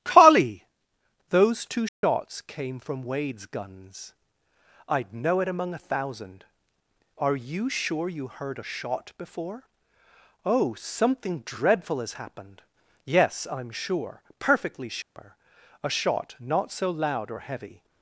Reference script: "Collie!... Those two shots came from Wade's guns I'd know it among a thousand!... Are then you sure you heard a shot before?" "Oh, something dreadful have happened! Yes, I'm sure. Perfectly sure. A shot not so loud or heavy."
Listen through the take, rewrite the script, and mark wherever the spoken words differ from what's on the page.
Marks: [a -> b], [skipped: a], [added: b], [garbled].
"Collie!... Those two shots came from Wade's guns I'd know it among a thousand!... Are [skipped: then] you sure you heard a shot before?" "Oh, something dreadful [have -> has] happened! Yes, I'm sure. Perfectly sure. A shot not so loud or heavy."